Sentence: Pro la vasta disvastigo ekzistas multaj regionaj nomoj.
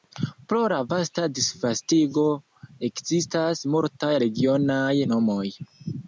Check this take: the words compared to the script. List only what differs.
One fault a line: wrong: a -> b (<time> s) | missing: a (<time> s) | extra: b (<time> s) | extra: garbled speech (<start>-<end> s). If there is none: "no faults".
no faults